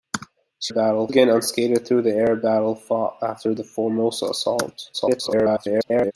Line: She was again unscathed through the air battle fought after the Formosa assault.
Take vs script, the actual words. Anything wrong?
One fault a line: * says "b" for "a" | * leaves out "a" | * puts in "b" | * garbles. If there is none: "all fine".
* says "battle" for "was"
* garbles